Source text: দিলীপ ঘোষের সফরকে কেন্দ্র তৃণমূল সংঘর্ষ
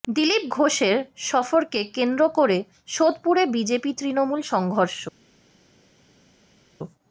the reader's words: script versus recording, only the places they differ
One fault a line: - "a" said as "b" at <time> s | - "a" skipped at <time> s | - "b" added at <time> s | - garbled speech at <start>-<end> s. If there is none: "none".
- "করে সোদপুরে বিজেপি" added at 2.3 s